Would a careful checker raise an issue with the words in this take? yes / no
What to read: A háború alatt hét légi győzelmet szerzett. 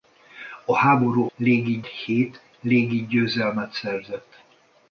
yes